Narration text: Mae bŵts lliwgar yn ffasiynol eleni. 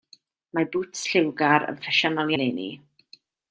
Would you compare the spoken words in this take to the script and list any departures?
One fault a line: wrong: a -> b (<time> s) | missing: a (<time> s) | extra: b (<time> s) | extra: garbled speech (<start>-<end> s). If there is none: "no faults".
no faults